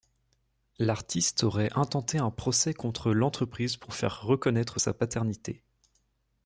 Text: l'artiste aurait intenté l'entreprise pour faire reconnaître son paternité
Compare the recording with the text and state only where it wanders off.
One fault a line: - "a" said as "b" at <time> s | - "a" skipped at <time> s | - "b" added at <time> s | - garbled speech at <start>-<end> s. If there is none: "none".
- "un procès contre" added at 2.2 s
- "son" said as "sa" at 4.8 s